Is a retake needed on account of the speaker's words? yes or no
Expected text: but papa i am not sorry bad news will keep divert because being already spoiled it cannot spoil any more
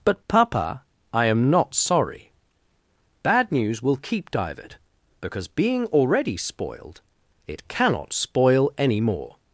no